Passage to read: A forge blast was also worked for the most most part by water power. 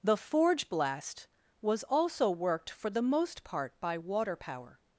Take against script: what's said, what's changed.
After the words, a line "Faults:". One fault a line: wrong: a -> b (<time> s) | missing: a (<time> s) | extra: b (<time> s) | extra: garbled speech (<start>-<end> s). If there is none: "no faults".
The forge blast was also worked for the most part by water power.
Faults:
wrong: A -> The (0.0 s)
missing: most (3.4 s)